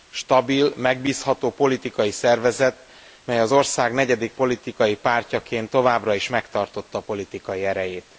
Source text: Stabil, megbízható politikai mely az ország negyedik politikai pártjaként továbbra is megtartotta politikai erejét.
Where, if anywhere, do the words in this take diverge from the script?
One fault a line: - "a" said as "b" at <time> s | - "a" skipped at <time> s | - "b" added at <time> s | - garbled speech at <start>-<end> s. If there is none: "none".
- "szervezet" added at 2.1 s